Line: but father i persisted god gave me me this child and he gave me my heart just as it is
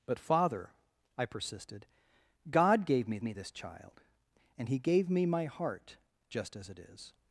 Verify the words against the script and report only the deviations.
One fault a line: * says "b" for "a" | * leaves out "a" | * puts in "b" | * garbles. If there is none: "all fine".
all fine